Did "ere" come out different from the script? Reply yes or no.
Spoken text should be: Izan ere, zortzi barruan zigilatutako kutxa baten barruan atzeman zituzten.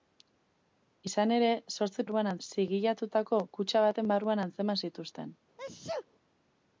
no